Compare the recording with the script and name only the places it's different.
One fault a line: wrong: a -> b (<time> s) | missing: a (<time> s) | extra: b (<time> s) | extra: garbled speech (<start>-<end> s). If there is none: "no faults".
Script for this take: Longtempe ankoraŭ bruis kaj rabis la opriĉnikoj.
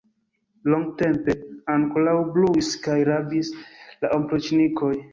no faults